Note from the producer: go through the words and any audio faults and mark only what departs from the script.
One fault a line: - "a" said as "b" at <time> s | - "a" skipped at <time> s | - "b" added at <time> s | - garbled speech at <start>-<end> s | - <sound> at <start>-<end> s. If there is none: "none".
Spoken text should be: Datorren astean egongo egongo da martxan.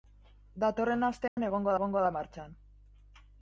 - dropout at 1.3-1.4 s